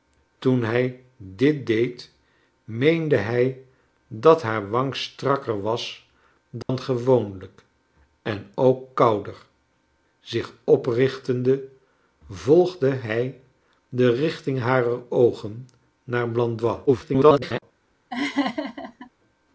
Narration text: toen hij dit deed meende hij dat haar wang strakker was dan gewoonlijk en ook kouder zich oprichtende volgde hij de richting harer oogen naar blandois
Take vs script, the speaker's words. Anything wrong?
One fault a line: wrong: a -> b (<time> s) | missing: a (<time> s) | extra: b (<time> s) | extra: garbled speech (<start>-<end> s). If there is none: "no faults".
extra: garbled speech (16.9-17.6 s)